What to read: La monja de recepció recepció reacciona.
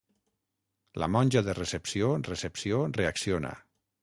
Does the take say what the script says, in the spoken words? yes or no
yes